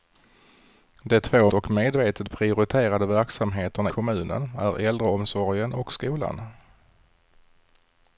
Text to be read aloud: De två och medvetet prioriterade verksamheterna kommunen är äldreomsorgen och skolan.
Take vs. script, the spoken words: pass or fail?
pass